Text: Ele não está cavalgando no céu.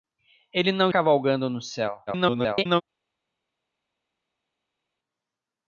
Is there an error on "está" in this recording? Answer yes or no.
yes